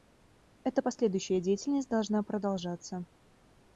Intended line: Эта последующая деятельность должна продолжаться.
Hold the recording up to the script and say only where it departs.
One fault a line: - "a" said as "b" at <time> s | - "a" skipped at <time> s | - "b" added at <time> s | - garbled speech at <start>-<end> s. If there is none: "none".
none